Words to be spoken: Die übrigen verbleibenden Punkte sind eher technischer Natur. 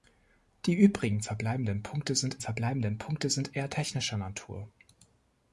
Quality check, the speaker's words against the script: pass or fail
fail